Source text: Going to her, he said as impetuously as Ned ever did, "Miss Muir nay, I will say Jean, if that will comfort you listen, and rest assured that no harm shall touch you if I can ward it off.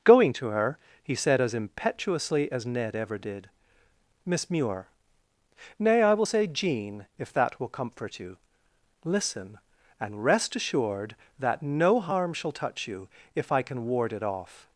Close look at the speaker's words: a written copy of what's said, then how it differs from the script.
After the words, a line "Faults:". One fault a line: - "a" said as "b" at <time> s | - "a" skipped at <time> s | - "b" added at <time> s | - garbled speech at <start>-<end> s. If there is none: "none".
Going to her, he said as impetuously as Ned ever did, "Miss Muir nay, I will say Jean, if that will comfort you listen, and rest assured that no harm shall touch you if I can ward it off.
Faults:
none